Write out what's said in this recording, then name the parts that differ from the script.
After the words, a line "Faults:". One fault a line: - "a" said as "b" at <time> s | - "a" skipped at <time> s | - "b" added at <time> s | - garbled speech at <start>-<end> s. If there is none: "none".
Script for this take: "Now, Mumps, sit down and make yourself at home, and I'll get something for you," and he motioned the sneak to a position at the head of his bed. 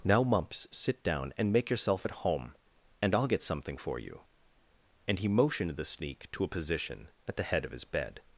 "Now, Mumps, sit down and make yourself at home, and I'll get something for you," and he motioned the sneak to a position at the head of his bed.
Faults:
none